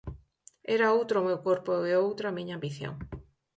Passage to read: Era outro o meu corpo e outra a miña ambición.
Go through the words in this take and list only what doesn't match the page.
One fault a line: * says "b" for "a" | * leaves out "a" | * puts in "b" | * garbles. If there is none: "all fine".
all fine